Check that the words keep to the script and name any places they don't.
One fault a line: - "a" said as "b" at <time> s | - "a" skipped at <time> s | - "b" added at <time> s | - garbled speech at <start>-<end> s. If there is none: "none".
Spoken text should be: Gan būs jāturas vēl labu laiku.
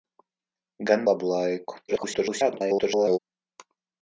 - "būs jāturas vēl" skipped at 1.1 s
- garbled speech at 1.9-3.2 s